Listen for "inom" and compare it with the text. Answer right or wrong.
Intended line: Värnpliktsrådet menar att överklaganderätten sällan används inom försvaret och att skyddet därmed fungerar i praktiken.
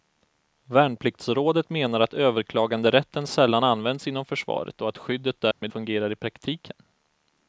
right